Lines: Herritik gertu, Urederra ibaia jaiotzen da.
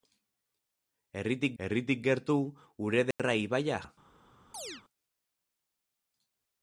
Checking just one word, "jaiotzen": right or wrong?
wrong